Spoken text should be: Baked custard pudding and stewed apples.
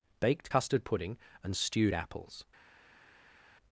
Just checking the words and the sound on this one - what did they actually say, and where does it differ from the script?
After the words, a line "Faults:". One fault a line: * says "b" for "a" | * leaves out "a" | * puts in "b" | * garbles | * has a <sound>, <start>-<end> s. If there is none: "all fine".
Baked custard pudding and stewed apples.
Faults:
all fine